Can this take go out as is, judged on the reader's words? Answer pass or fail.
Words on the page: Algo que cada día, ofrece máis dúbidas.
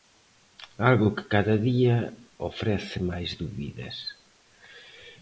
pass